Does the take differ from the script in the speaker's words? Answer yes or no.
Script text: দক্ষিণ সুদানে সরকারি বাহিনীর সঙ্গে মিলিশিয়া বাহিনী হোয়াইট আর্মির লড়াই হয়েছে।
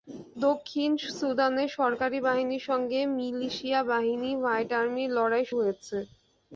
no